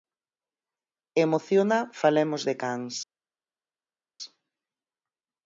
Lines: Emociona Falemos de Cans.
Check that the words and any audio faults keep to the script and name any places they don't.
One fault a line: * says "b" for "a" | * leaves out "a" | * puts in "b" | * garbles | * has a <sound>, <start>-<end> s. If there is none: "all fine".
all fine